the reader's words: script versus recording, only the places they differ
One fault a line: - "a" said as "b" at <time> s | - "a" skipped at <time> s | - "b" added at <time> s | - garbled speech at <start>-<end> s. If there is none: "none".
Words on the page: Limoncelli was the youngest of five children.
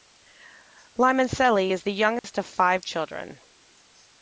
- "was" said as "is" at 1.7 s